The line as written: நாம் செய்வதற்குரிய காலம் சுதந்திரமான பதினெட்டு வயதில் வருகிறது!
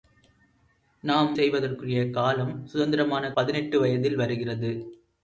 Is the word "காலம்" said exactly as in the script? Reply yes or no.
yes